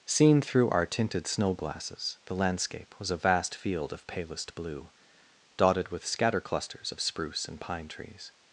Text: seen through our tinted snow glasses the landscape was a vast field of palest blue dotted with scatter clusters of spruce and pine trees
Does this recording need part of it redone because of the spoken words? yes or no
no